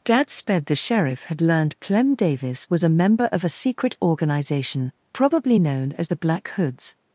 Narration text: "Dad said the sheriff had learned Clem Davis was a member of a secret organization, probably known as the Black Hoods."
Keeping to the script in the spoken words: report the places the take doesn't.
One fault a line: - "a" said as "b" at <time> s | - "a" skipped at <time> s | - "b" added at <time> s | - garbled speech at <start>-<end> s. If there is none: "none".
- "said" said as "sped" at 0.3 s